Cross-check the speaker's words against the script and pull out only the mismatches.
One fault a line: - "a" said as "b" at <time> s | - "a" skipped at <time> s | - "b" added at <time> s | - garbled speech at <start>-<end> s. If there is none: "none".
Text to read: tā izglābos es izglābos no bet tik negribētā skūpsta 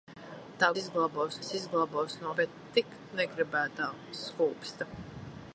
none